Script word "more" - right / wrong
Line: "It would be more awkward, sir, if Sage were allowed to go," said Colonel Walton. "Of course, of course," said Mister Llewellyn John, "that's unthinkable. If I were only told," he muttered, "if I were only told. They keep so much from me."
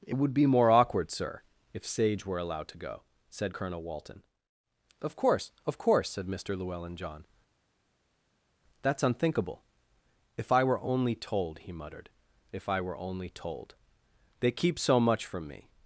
right